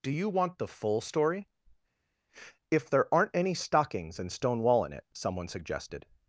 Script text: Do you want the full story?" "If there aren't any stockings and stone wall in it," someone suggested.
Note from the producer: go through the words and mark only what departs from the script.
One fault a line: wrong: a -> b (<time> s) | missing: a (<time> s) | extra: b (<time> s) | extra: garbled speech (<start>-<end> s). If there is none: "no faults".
no faults